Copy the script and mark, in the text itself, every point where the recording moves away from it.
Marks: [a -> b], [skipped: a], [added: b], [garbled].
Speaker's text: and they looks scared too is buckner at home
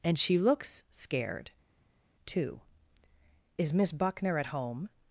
and [they -> she] looks scared too is [added: miss] buckner at home